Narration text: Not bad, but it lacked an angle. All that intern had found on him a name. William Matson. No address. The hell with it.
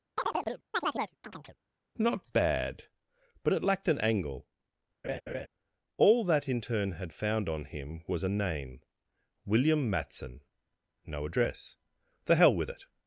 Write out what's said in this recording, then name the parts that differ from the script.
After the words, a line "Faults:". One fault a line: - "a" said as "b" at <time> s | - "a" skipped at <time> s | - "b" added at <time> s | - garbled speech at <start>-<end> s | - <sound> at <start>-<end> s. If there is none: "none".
Not bad, but it lacked an angle. All that intern had found on him was a name. William Matson. No address. The hell with it.
Faults:
- chirp at 0.2-1.6 s
- laugh at 5.0-5.5 s
- "was" added at 8.1 s